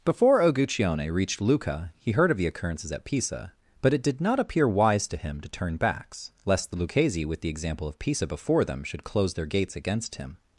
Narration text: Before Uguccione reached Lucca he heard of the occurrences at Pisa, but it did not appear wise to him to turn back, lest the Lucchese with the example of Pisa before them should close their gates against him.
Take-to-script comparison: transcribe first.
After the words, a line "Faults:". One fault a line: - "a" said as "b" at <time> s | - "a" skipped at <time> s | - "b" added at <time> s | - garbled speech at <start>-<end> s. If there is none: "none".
Before Uguccione reached Lucca he heard of the occurrences at Pisa, but it did not appear wise to him to turn backs, lest the Lucchese with the example of Pisa before them should close their gates against him.
Faults:
- "back" said as "backs" at 5.8 s